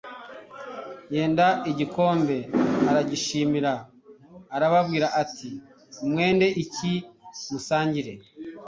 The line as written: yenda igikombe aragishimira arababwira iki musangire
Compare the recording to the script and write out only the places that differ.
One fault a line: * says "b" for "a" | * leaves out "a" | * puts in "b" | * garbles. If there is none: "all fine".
* puts in "ati mwende"